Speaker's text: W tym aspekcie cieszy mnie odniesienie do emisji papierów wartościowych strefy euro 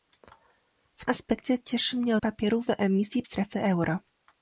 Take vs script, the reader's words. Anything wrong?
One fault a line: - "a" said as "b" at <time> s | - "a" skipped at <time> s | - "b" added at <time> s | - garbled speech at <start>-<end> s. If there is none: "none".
- "tym" skipped at 1.1 s
- "odniesienie" said as "papierów" at 2.2 s
- "papierów wartościowych" skipped at 3.2 s